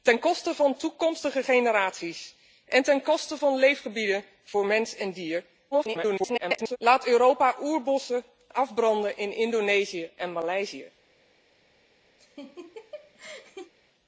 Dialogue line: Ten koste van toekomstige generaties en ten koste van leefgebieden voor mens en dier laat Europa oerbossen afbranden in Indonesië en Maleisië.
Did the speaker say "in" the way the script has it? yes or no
yes